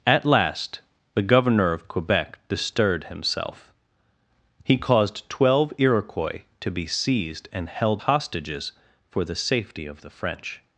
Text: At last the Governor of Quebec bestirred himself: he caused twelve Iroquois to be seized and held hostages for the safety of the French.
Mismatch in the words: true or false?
false